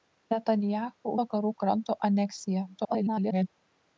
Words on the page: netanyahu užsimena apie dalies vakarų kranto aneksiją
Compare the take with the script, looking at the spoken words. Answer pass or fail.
fail